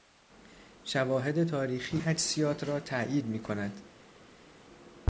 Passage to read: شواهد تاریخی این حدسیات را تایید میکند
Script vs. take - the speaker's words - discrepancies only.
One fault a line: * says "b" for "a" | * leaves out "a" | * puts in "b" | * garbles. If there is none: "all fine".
* leaves out "این"